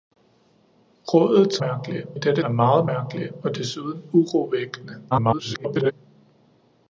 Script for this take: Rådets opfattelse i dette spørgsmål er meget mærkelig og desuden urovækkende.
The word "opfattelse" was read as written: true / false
false